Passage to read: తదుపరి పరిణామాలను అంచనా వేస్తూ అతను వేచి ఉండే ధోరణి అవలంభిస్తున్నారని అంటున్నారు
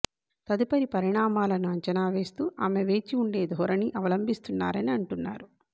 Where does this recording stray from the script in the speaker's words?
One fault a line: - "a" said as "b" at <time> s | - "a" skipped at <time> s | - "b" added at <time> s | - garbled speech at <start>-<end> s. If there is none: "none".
- "అతను" said as "ఆమె" at 2.6 s